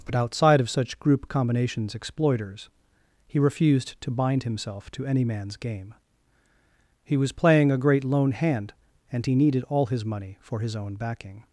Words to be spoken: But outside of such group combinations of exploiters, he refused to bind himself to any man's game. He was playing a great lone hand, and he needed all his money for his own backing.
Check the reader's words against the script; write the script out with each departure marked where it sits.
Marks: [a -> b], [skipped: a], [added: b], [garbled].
But outside of such group combinations [skipped: of] exploiters, he refused to bind himself to any man's game. He was playing a great lone hand, and he needed all his money for his own backing.